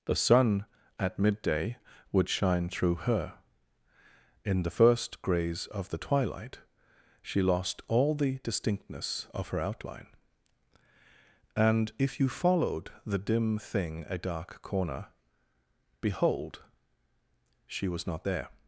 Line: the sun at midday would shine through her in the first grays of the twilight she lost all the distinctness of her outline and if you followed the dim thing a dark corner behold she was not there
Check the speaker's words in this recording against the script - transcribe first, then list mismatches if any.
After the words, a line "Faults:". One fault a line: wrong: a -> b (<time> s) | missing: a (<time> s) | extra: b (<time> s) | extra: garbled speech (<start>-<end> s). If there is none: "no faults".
the sun at midday would shine through her in the first grays of the twilight she lost all the distinctness of her outline and if you followed the dim thing a dark corner behold she was not there
Faults:
no faults